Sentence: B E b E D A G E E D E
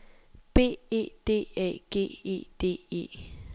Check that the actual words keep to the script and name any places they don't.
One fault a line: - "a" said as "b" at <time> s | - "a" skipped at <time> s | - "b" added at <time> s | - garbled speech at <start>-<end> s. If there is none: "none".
- "b E" skipped at 1.1 s
- "E" skipped at 2.5 s